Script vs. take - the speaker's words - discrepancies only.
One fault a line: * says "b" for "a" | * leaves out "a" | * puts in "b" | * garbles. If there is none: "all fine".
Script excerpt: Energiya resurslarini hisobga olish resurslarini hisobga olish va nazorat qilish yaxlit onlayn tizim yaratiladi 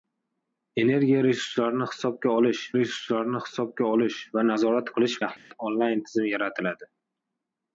all fine